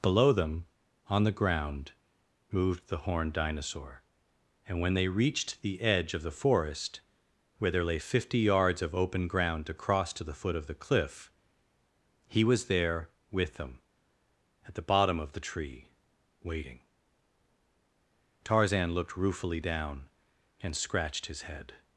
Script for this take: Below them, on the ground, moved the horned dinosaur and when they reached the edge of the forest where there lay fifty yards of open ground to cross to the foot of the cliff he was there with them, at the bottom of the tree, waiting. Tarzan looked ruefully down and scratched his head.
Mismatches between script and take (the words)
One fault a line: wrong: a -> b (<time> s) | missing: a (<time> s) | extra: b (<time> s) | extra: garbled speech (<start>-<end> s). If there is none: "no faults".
no faults